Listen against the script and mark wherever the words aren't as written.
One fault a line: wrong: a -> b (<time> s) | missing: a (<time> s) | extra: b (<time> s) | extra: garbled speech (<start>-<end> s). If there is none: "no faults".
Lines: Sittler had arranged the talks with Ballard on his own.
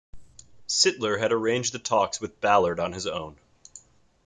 no faults